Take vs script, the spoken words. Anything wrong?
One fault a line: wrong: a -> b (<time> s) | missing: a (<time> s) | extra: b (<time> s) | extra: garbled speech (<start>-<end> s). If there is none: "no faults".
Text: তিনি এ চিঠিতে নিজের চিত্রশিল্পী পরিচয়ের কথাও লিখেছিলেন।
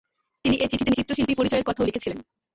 missing: নিজের (0.9 s)